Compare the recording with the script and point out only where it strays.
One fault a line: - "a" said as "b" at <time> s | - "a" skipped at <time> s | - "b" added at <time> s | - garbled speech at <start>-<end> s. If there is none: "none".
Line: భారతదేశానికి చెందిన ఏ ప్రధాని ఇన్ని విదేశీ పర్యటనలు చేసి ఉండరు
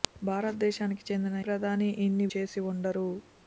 - "ఏ" skipped at 1.4 s
- "విదేశీ పర్యటనలు" skipped at 2.3 s